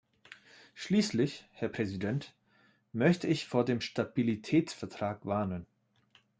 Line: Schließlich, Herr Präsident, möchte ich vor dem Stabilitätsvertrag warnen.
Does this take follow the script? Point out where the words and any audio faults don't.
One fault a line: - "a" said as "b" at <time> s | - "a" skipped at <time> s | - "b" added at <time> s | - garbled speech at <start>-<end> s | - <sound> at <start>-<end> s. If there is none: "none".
none